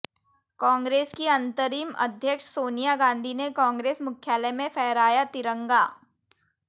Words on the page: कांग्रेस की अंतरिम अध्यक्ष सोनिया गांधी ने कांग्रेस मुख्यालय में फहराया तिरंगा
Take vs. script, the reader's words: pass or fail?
pass